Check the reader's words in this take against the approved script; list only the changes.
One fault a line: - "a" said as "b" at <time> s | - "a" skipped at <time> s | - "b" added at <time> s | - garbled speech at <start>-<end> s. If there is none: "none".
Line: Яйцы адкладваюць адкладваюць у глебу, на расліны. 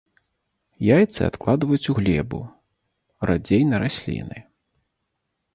- "адкладваюць" skipped at 1.9 s
- "радзей" added at 3.3 s